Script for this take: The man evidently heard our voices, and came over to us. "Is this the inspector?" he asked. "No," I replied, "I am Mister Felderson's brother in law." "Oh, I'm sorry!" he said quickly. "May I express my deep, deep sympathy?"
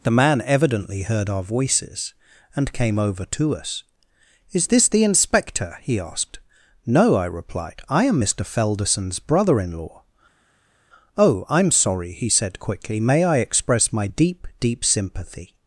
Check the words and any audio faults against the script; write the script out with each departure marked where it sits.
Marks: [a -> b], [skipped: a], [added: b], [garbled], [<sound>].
The man evidently heard our voices, and came over to us. "Is this the inspector?" he asked. "No," I replied, "I am Mister Felderson's brother in law." "Oh, I'm sorry!" he said quickly. "May I express my deep, deep sympathy?"